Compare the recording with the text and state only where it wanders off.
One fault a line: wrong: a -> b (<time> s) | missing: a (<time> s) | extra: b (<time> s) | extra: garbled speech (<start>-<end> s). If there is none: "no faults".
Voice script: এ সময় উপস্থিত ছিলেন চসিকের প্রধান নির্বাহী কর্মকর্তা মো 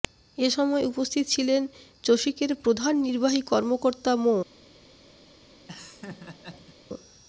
no faults